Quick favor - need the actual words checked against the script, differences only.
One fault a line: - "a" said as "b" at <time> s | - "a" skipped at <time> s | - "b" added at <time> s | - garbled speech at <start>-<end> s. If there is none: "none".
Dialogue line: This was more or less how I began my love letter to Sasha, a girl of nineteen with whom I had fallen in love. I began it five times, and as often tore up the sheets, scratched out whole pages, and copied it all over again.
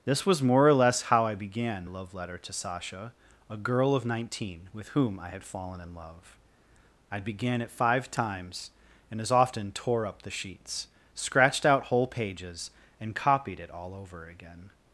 - "my" skipped at 1.9 s